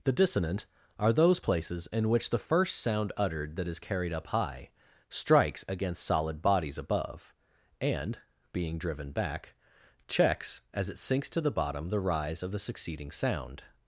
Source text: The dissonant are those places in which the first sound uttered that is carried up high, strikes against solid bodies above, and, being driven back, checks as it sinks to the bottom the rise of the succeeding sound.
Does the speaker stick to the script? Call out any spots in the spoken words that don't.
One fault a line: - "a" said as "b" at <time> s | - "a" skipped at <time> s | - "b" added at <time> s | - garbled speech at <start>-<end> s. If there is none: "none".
none